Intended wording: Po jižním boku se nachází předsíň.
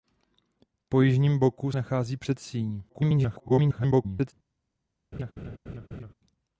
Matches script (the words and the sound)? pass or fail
fail